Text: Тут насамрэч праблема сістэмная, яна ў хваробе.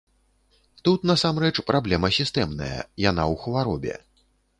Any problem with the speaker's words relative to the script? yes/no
no